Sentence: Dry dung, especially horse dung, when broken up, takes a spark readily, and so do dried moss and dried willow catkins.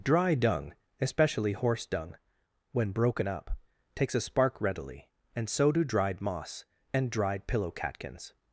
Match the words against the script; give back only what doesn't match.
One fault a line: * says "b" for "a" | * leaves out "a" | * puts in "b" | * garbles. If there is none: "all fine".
* says "pillow" for "willow"